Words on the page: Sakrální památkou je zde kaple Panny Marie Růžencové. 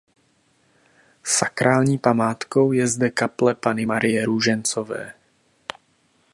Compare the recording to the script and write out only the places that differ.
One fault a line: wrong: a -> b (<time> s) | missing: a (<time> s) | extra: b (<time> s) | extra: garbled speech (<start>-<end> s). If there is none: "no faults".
no faults